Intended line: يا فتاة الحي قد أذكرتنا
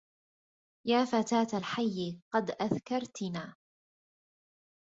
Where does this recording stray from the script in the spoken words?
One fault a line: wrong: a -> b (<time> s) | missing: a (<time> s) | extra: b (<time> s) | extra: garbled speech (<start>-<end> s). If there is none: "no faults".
no faults